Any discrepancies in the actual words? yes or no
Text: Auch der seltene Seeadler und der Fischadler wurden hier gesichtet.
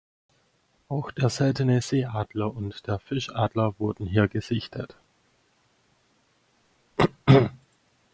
no